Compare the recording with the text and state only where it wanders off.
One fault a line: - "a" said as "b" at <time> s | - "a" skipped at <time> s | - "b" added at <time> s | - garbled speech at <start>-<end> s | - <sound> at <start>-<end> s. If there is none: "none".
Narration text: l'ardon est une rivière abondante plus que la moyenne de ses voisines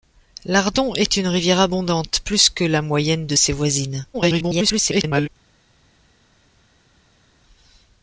- garbled speech at 4.1-5.3 s